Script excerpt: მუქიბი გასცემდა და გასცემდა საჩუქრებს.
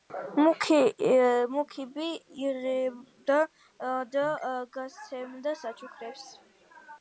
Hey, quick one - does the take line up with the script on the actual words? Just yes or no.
no